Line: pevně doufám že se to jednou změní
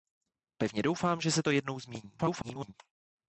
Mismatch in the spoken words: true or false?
true